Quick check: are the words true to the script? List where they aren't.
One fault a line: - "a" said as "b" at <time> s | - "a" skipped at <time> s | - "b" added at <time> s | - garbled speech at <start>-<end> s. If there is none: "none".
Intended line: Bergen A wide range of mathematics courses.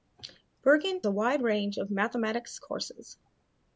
none